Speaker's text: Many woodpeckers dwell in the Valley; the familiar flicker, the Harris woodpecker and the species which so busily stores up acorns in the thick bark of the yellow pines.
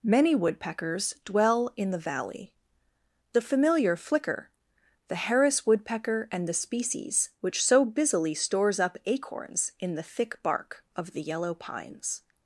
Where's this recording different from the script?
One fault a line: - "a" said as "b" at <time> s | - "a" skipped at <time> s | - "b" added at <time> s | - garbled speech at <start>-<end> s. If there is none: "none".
none